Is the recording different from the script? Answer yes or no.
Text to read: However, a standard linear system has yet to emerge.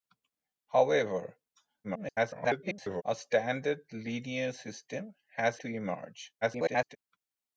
yes